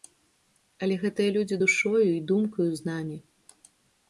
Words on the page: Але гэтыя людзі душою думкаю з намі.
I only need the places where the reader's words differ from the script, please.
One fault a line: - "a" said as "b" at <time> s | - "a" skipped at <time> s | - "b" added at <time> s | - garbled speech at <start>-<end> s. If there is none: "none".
- "і" added at 2.1 s